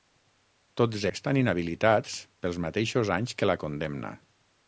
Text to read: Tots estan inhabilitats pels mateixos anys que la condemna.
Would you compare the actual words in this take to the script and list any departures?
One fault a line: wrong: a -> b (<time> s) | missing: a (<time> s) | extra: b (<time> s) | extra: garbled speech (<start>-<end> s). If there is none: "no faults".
no faults